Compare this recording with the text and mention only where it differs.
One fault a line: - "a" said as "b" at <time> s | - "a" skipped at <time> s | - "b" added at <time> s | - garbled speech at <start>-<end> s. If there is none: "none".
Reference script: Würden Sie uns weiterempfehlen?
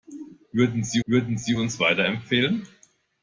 - "würden Sie" added at 1.0 s